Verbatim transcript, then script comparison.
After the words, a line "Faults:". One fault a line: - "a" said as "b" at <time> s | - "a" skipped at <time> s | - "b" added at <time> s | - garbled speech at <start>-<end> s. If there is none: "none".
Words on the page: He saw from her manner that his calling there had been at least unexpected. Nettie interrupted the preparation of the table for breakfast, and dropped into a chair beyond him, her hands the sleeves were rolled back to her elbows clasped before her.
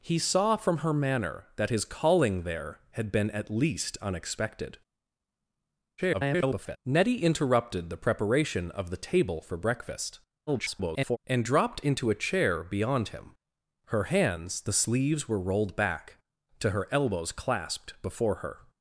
He saw from her manner that his calling there had been at least unexpected. [garbled] Nettie interrupted the preparation of the table for breakfast, [garbled] and dropped into a chair beyond him, her hands the sleeves were rolled back to her elbows clasped before her.
Faults:
- garbled speech at 6.0-6.8 s
- garbled speech at 10.5-11.2 s